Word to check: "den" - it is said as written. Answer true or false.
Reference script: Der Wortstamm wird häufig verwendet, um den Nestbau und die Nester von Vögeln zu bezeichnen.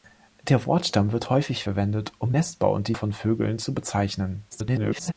false